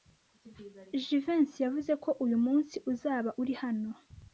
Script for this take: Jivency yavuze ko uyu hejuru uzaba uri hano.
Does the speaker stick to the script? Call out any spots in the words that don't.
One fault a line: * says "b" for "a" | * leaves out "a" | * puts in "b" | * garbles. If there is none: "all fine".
* says "munsi" for "hejuru"